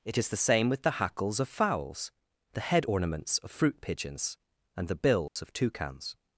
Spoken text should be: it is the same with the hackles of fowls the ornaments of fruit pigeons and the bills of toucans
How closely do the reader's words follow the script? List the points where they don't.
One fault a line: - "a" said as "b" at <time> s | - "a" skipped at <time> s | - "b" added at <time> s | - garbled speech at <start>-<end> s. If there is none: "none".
- "head" added at 2.6 s